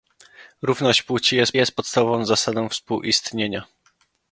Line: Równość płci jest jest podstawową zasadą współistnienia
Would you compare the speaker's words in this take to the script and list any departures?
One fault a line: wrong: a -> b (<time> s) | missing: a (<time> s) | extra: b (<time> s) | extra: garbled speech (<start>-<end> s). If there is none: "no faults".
no faults